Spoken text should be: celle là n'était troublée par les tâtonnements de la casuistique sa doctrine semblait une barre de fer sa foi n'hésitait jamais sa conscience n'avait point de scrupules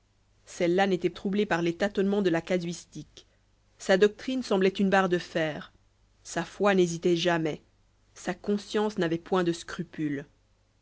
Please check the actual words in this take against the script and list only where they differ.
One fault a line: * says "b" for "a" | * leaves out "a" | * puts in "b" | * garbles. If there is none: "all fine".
all fine